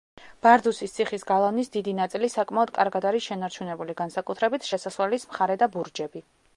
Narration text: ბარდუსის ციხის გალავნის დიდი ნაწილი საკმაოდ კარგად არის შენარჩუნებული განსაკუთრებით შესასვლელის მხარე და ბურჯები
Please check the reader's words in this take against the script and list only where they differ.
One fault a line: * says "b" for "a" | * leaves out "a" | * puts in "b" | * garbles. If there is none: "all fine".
all fine